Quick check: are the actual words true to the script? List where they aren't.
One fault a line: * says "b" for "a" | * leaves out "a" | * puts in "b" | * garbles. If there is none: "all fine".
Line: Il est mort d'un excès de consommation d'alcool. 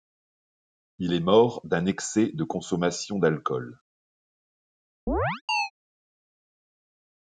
all fine